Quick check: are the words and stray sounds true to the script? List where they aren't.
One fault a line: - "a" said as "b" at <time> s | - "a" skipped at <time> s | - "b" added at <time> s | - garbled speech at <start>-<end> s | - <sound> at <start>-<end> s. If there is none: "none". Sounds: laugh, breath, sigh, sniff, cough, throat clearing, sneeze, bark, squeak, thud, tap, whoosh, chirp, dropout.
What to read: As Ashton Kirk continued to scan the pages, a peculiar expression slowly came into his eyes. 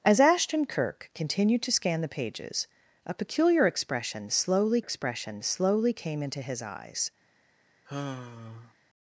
- "expression slowly" added at 4.8 s
- sigh at 7.9-8.7 s